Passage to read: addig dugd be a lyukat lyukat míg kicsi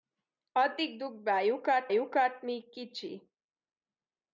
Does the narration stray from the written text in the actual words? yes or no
no